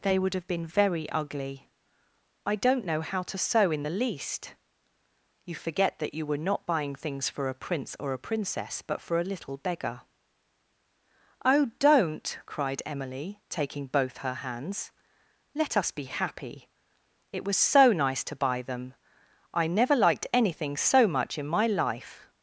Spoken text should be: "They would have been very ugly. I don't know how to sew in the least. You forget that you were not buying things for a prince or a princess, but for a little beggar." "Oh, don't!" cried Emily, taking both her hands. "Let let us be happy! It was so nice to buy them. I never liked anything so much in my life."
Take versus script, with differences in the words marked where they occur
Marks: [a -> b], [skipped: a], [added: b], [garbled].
"They would have been very ugly. I don't know how to sew in the least. You forget that you were not buying things for a prince or a princess, but for a little beggar." "Oh, don't!" cried Emily, taking both her hands. "Let [skipped: let] us be happy! It was so nice to buy them. I never liked anything so much in my life."